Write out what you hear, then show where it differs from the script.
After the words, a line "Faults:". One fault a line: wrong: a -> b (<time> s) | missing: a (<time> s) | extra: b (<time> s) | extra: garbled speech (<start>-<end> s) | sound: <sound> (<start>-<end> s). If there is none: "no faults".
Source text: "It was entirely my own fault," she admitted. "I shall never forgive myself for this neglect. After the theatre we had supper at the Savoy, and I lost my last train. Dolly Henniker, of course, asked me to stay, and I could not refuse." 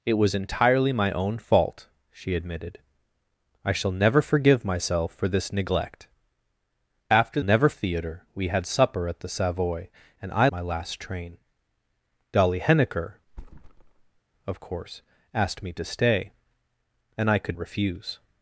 "It was entirely my own fault," she admitted. "I shall never forgive myself for this neglect. After never theatre we had supper at the Savoy, and I my last train. Dolly Henniker, of course, asked me to stay, and I could refuse."
Faults:
wrong: the -> never (7.4 s)
missing: lost (10.5 s)
sound: thud (13.3-14.2 s)
missing: not (17.6 s)